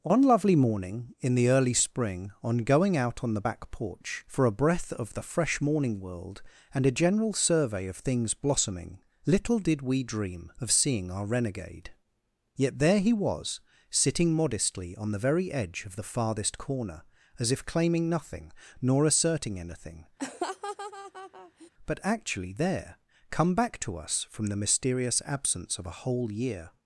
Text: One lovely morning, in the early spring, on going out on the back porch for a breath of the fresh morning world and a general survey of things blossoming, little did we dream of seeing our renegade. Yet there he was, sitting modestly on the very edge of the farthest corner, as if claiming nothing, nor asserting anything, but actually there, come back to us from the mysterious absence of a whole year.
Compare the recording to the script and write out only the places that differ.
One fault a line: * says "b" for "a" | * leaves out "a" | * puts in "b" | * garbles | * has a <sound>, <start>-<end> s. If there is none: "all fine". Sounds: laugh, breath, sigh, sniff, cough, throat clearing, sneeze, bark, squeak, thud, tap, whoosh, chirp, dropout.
* has a laugh, 20.2-21.7 s